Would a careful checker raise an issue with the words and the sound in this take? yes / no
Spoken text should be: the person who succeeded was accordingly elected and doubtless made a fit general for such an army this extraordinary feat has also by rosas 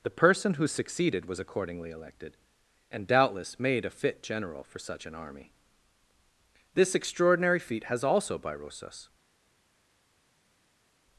no